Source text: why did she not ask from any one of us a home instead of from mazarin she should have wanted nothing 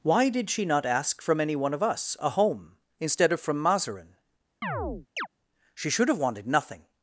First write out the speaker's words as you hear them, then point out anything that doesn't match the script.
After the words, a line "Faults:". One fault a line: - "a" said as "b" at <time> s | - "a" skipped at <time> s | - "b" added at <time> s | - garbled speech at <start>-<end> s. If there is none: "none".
why did she not ask from any one of us a home instead of from mazarin she should have wanted nothing
Faults:
none